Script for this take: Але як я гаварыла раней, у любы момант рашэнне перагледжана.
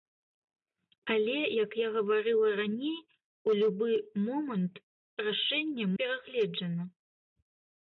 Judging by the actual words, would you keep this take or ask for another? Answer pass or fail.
pass